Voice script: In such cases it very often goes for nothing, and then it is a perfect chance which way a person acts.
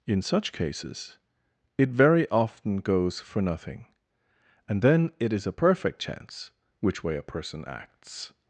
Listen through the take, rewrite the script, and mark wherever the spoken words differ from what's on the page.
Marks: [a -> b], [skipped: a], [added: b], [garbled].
In such cases it very often goes for nothing, and then it is a perfect chance which way a person acts.